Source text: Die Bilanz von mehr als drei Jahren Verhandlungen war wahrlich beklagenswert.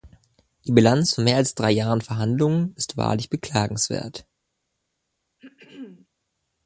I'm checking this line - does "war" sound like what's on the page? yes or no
no